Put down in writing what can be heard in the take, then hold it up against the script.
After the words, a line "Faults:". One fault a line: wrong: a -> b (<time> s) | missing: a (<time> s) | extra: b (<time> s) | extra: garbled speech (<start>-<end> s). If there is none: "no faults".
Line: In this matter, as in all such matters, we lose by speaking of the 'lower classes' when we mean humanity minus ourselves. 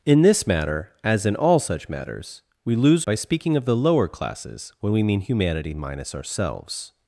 In this matter, as in all such matters, we lose by speaking of the 'lower classes' when we mean humanity minus ourselves.
Faults:
no faults